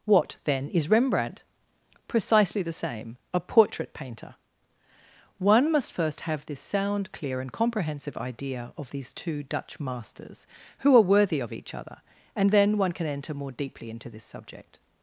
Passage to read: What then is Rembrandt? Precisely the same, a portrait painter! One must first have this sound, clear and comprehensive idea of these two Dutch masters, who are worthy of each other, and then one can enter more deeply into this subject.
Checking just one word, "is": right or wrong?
right